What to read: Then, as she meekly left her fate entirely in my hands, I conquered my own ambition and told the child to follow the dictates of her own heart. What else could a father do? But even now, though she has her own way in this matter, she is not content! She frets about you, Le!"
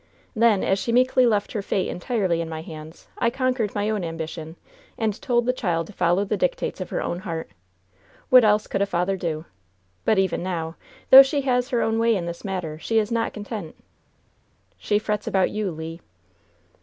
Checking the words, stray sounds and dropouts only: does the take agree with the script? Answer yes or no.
yes